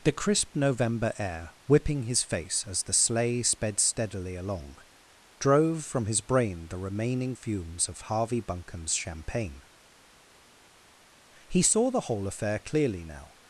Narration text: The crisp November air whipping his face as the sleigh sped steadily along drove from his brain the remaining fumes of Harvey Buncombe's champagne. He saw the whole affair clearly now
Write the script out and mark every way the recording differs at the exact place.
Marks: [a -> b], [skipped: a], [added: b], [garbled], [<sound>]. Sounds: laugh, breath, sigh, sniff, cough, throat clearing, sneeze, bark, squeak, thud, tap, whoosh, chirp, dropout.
The crisp November air whipping his face as the sleigh sped steadily along drove from his brain the remaining fumes of Harvey Buncombe's champagne. He saw the whole affair clearly now